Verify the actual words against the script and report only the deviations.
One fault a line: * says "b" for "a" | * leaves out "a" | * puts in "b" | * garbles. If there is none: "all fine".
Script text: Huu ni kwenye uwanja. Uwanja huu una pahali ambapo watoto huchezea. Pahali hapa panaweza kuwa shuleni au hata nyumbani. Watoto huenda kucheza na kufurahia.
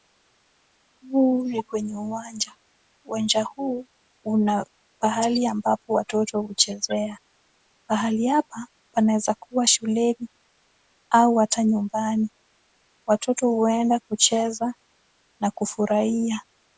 all fine